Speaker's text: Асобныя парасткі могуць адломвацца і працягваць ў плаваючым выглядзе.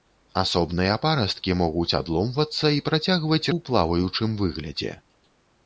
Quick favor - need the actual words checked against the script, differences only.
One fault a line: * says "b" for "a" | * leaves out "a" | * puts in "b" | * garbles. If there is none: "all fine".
all fine